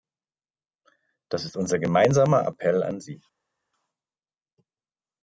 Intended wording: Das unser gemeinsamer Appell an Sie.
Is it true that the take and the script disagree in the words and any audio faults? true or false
true